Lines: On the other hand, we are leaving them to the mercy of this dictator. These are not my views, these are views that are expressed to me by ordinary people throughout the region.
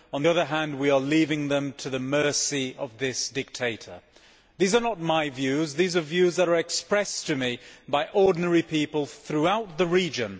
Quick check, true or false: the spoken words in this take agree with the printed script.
false